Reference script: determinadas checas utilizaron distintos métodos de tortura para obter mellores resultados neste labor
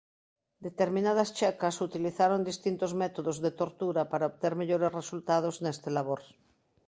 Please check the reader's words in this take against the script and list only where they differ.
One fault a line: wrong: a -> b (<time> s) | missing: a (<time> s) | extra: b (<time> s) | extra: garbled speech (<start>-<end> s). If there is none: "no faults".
no faults